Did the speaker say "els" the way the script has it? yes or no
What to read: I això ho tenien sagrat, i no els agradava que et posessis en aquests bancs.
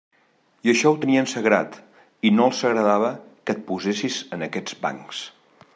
yes